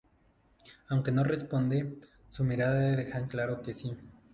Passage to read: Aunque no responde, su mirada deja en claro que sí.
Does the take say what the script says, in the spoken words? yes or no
yes